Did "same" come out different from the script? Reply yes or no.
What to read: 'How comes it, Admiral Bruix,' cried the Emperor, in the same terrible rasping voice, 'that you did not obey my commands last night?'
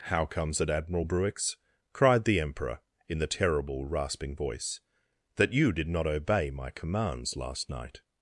yes